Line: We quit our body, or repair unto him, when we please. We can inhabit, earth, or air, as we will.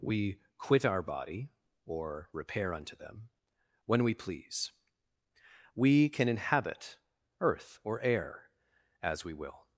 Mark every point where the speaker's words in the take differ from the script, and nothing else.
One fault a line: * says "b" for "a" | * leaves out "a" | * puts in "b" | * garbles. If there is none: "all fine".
* says "them" for "him"